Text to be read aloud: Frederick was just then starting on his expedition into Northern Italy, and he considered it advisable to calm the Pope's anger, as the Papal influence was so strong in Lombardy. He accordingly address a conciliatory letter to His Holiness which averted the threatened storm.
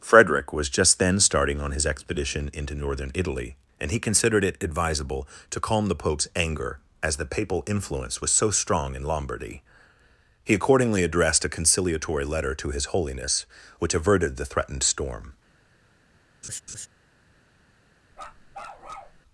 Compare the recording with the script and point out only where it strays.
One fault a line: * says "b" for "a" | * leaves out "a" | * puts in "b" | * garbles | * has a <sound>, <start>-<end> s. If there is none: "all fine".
* says "addressed" for "address"
* has a laugh, 16.4-16.9 s
* has a bark, 18.1-19.2 s